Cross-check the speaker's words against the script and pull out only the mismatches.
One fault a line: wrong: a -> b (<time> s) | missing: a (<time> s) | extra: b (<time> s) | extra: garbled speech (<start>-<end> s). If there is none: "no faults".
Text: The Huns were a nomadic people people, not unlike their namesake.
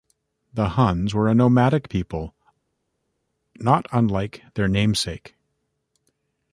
missing: people (2.3 s)